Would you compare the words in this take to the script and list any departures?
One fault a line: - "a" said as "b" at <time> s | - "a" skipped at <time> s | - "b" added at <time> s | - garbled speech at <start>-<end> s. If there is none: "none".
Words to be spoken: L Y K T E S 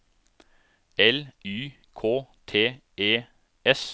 none